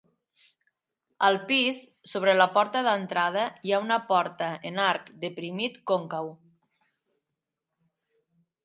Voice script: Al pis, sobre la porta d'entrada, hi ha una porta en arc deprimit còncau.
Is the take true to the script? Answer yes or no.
yes